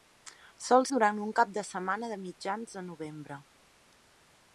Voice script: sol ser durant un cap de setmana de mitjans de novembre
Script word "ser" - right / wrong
wrong